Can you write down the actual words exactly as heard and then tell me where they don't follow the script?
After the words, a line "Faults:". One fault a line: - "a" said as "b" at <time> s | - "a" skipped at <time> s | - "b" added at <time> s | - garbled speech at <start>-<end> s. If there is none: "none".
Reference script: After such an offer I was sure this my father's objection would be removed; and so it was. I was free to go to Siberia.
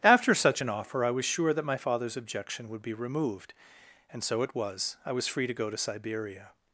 After such an offer I was sure that my father's objection would be removed; and so it was. I was free to go to Siberia.
Faults:
- "this" said as "that" at 1.5 s